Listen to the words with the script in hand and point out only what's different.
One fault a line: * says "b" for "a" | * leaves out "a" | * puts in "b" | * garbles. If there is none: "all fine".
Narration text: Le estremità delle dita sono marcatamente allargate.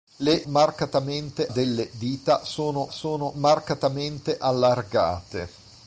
* says "marcatamente" for "estremità"
* puts in "sono"